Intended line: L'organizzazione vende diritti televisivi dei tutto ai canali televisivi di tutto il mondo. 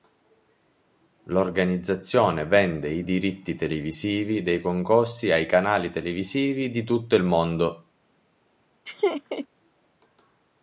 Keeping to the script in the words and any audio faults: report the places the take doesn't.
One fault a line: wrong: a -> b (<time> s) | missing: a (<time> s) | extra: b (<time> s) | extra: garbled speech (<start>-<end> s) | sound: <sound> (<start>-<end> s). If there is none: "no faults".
extra: i (2.9 s)
wrong: tutto -> concorsi (4.6 s)
sound: laugh (8.9-9.5 s)